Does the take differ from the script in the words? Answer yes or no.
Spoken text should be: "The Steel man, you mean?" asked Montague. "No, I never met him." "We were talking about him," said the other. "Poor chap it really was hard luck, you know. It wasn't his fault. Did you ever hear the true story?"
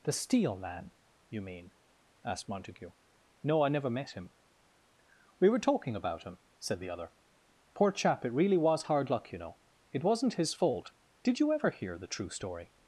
no